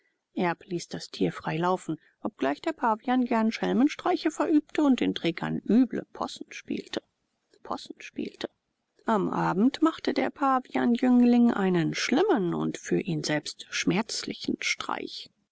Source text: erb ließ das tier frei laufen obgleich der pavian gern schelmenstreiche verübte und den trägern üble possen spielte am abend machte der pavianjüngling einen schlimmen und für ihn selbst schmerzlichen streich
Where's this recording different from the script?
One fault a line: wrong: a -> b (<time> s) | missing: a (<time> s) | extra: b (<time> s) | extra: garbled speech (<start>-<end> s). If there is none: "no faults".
extra: possen spielte (7.6 s)